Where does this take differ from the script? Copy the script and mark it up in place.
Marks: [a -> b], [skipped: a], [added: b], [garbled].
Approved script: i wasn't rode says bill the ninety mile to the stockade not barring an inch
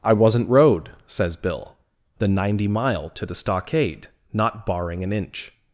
i wasn't rode says bill the ninety mile to the stockade not barring an inch